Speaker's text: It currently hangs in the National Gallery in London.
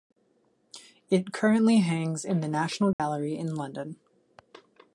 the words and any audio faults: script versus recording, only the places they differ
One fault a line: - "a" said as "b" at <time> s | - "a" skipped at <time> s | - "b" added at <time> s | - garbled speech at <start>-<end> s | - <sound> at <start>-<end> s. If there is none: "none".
- dropout at 2.9-3.0 s